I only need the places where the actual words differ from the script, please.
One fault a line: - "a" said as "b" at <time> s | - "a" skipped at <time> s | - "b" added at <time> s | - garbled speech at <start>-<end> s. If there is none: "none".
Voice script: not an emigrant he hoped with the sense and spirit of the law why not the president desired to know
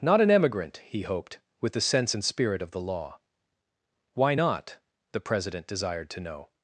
none